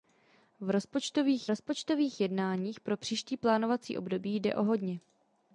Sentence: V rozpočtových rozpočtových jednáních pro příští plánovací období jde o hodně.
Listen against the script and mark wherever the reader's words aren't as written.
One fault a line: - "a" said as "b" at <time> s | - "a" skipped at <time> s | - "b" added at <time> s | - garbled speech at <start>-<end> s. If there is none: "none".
none